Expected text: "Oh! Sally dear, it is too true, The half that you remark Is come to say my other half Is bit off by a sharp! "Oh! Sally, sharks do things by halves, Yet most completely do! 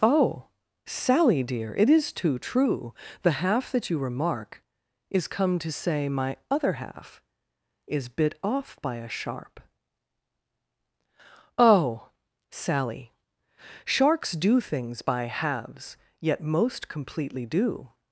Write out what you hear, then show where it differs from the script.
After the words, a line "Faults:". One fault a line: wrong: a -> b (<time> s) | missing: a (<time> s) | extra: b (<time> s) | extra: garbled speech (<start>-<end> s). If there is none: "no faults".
"Oh! Sally dear, it is too true, The half that you remark Is come to say my other half Is bit off by a sharp! "Oh! Sally, sharks do things by halves, Yet most completely do!
Faults:
no faults